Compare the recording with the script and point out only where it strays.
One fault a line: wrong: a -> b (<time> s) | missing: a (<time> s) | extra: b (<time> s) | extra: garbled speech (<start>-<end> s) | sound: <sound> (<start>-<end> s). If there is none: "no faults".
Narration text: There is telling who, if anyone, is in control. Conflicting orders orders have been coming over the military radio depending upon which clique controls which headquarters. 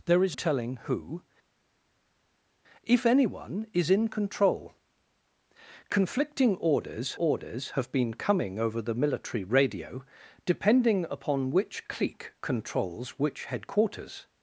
no faults